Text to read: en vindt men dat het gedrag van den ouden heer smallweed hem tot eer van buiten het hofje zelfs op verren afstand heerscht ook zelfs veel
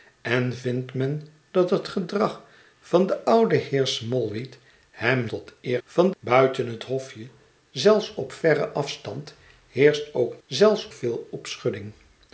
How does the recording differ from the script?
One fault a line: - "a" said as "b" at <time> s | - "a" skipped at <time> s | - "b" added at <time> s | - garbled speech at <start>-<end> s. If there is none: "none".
none